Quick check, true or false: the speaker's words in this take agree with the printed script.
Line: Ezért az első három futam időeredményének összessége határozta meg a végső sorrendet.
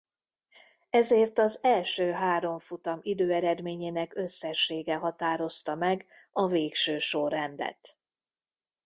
true